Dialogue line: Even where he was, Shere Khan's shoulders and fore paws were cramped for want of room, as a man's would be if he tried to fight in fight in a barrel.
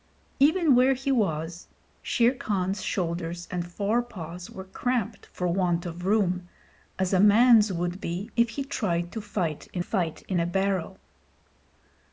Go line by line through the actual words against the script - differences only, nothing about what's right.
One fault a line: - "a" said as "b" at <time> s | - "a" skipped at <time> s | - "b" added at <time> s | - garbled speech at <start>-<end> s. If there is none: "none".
none